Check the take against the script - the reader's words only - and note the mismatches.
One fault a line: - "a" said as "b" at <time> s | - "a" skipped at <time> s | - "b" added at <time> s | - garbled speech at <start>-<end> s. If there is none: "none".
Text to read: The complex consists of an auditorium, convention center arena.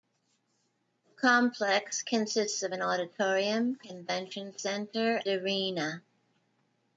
none